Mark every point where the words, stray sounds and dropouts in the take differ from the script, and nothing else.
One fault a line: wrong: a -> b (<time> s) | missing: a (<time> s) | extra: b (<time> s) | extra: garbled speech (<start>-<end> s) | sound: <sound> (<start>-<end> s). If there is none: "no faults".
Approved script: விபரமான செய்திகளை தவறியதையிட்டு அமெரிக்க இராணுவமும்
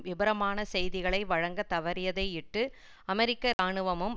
extra: வழங்க (1.2 s)
sound: dropout (3.5-3.6 s)